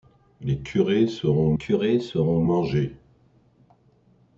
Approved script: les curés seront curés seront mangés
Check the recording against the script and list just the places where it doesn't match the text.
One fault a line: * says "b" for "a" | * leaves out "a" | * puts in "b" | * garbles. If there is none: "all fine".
all fine